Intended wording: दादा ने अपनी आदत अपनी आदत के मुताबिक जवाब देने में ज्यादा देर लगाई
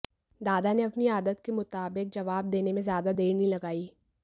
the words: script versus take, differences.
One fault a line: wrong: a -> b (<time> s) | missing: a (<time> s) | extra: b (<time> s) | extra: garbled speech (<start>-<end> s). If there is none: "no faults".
missing: अपनी आदत (1.4 s)
extra: नहीं (3.3 s)